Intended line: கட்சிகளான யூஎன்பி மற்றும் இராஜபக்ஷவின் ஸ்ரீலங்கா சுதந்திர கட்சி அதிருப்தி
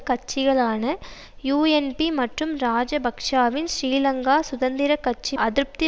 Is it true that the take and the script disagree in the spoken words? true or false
false